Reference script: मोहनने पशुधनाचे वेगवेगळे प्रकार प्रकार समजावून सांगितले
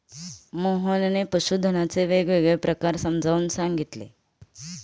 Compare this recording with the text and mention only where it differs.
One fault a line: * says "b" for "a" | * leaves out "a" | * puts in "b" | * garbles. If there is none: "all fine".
* leaves out "प्रकार"